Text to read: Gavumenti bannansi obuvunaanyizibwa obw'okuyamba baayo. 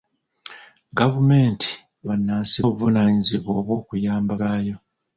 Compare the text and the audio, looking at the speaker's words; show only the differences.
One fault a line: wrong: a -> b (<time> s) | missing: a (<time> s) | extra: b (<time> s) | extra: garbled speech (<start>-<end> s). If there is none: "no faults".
no faults